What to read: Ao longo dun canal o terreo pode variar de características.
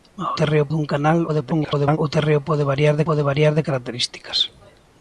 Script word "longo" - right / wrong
wrong